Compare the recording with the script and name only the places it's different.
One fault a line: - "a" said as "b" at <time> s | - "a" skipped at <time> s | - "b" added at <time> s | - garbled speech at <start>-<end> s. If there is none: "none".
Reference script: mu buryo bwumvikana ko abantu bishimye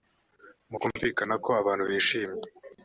- "buryo" skipped at 0.8 s